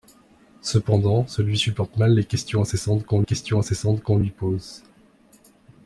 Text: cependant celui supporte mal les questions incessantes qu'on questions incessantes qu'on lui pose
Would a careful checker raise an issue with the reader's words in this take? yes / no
no